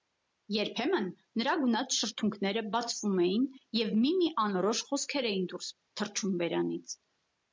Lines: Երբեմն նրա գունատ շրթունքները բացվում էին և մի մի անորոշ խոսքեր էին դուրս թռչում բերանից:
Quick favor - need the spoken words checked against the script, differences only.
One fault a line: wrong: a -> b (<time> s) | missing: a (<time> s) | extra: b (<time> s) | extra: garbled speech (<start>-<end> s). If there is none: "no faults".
no faults